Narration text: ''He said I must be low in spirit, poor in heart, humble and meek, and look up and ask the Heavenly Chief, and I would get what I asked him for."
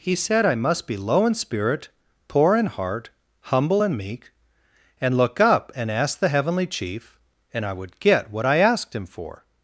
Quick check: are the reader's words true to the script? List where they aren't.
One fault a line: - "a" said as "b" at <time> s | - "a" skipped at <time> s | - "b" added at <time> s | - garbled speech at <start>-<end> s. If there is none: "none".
none